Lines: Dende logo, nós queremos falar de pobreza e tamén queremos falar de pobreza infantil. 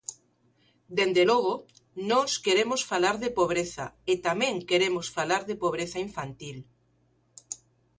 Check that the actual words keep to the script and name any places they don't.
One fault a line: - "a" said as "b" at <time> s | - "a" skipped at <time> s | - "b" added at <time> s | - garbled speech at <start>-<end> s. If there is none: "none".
none